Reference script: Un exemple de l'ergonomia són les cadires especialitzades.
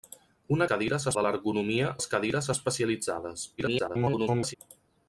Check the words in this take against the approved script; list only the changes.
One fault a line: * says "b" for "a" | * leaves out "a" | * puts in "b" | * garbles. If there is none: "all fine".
* says "cadires" for "exemple"
* leaves out "són"
* garbles